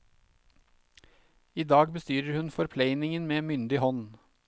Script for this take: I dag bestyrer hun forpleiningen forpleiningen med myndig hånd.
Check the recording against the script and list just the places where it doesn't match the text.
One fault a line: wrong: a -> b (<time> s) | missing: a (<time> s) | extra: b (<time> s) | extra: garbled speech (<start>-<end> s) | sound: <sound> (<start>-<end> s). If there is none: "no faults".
missing: forpleiningen (3.3 s)